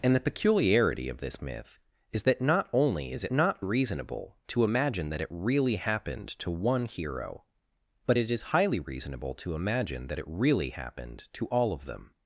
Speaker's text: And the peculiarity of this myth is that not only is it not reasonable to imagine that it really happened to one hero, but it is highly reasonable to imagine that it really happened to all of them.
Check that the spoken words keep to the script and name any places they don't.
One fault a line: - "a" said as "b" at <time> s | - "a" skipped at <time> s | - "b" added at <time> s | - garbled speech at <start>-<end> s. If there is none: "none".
none